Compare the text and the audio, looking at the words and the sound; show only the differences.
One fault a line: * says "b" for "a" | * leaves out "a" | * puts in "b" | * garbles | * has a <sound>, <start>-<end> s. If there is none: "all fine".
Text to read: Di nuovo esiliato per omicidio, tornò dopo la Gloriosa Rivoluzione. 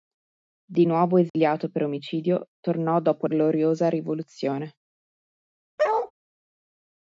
* has a dropout, 1.3-1.3 s
* leaves out "la"
* has a bark, 5.8-6.1 s